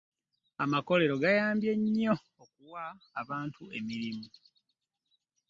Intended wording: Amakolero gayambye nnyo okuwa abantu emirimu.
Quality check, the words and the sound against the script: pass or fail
pass